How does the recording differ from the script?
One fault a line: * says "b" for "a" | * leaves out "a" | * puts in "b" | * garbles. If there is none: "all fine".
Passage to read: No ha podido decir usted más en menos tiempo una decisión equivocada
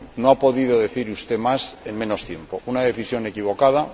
all fine